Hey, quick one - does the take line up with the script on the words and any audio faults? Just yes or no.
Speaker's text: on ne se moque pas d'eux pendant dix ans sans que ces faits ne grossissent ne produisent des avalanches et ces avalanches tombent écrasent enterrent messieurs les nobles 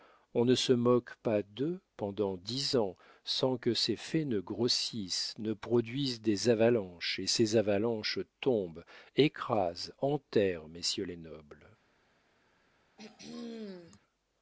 no